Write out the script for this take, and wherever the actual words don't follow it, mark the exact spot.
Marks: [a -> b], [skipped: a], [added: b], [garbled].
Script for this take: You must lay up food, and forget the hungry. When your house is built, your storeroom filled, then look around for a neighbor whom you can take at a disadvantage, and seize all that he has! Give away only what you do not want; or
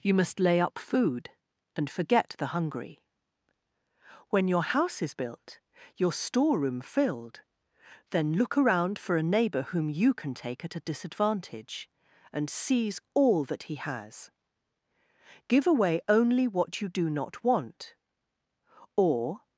You must lay up food, and forget the hungry. When your house is built, your storeroom filled, then look around for a neighbor whom you can take at a disadvantage, and seize all that he has! Give away only what you do not want; or